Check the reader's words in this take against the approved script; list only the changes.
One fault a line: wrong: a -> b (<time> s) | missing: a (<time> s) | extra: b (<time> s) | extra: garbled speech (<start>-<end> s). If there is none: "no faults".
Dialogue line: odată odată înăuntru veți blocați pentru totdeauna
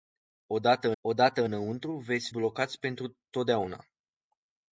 no faults